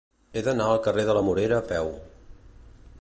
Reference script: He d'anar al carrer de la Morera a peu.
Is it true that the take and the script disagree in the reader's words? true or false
false